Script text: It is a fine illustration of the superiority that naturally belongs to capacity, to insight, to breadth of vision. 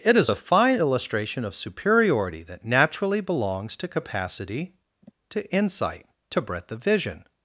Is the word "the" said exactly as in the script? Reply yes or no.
no